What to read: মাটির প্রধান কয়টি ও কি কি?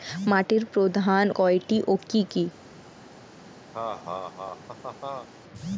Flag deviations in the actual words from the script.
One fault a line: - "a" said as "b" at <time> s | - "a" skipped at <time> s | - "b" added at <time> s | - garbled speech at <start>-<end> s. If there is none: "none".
none